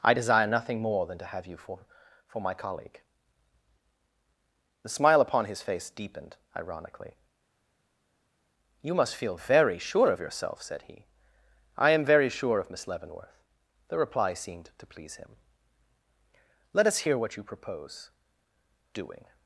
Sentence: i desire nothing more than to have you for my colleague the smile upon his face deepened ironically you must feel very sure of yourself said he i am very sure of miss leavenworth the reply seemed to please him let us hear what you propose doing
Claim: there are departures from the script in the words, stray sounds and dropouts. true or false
true